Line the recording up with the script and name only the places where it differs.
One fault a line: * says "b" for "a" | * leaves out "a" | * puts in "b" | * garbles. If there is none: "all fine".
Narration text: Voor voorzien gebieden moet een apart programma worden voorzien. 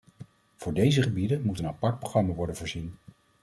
* says "deze" for "voorzien"